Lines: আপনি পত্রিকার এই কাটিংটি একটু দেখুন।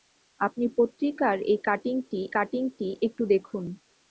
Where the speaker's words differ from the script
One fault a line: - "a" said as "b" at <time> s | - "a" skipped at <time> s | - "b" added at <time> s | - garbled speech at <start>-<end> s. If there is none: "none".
- "কাটিংটি" added at 2.3 s